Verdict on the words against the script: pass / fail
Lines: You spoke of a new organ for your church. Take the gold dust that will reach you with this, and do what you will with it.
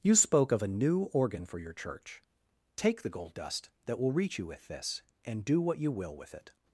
pass